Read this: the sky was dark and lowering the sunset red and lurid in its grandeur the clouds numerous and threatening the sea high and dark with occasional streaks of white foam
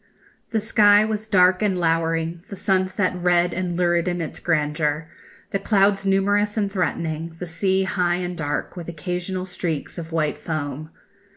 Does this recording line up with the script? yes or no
yes